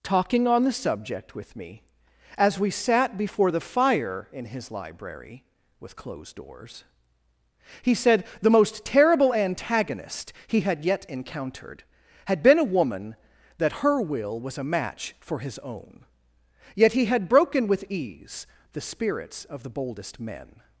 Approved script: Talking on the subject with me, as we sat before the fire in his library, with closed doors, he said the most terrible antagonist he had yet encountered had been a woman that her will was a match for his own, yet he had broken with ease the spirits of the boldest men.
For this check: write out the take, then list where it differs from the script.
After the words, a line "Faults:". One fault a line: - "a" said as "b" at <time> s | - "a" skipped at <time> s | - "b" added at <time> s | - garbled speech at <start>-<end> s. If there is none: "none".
Talking on the subject with me, as we sat before the fire in his library, with closed doors, he said the most terrible antagonist he had yet encountered had been a woman that her will was a match for his own, yet he had broken with ease the spirits of the boldest men.
Faults:
none